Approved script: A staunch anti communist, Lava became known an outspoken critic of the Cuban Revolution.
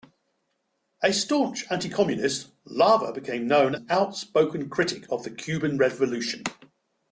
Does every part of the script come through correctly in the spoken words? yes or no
yes